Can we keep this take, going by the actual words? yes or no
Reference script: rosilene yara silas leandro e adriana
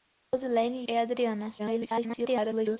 no